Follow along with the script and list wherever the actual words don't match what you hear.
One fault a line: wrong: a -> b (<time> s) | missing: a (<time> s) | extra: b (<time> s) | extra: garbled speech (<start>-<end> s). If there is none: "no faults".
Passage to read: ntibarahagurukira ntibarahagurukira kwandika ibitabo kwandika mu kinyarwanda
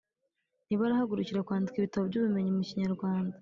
missing: ntibarahagurukira (1.4 s)
wrong: kwandika -> by'ubumenyi (2.1 s)